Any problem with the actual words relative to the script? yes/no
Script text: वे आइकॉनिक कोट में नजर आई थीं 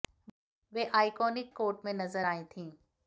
no